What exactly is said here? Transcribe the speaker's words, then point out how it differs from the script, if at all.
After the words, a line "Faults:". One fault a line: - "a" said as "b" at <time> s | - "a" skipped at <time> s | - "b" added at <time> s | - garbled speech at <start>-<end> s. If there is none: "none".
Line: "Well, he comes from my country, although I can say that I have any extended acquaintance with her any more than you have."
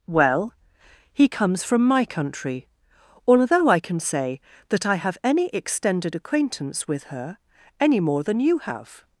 "Well, he comes from my country, although I can say that I have any extended acquaintance with her any more than you have."
Faults:
none